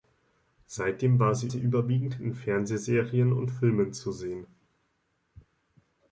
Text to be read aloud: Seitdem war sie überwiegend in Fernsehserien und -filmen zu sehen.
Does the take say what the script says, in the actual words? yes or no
no